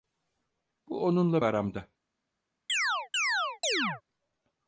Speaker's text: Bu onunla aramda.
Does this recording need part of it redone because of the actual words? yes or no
no